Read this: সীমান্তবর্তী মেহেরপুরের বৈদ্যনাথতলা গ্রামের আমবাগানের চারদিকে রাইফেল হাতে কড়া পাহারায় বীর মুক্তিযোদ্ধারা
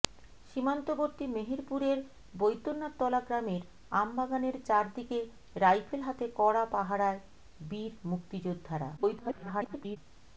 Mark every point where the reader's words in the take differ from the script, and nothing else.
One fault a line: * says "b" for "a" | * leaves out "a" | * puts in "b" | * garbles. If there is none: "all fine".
* garbles